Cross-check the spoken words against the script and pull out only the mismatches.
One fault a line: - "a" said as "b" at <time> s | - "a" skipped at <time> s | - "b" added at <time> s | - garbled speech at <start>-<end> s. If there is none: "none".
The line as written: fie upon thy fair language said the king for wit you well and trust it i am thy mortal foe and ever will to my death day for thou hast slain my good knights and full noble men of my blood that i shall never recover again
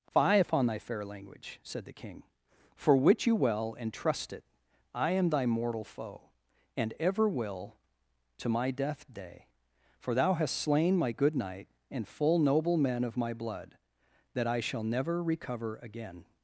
- "knights" said as "knight" at 11.4 s